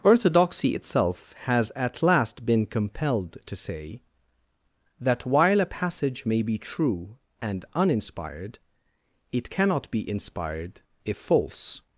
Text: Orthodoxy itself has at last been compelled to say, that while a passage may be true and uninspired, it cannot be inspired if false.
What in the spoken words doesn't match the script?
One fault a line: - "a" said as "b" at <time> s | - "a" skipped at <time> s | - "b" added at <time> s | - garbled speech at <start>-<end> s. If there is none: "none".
none